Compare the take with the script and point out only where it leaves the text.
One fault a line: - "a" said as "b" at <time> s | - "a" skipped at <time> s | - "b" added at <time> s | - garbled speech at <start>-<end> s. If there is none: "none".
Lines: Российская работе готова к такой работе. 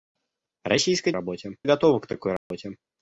none